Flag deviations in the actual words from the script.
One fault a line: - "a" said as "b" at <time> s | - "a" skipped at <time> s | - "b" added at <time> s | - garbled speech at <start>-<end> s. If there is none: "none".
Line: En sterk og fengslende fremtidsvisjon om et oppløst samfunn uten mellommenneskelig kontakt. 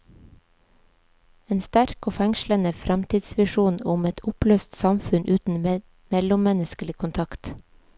none